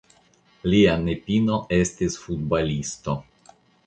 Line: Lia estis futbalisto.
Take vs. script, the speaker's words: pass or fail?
fail